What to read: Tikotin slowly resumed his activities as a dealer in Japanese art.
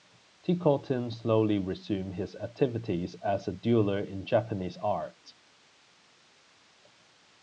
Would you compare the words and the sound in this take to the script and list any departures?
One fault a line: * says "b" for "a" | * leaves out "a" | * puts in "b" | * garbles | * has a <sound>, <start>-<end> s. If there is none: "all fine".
all fine